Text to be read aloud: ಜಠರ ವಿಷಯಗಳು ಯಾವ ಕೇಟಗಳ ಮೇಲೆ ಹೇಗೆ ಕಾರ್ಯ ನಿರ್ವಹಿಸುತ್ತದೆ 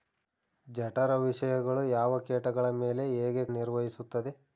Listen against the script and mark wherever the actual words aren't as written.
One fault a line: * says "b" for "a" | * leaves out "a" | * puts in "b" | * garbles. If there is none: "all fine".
* leaves out "ಕಾರ್ಯ"